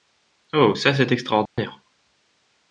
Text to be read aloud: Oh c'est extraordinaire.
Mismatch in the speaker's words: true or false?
true